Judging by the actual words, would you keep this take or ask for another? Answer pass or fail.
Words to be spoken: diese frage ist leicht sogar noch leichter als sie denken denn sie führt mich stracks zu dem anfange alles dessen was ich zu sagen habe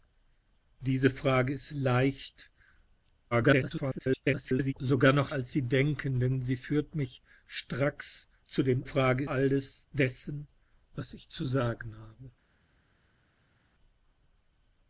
fail